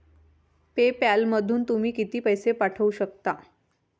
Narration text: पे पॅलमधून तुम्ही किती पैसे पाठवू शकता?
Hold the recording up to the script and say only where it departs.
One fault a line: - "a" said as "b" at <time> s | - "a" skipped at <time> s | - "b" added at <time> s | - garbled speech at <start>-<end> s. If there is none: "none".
none